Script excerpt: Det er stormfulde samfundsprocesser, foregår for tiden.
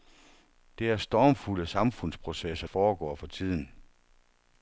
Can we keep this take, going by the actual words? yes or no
yes